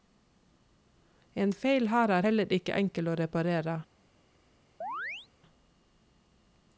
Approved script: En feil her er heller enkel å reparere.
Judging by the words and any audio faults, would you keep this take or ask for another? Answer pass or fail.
fail